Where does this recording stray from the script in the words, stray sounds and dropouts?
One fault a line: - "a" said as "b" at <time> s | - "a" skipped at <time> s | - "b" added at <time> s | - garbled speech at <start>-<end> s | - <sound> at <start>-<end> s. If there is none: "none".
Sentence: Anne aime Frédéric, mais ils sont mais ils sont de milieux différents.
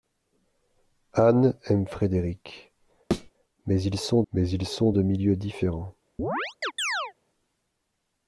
- thud at 3.1-3.3 s
- chirp at 6.2-7.1 s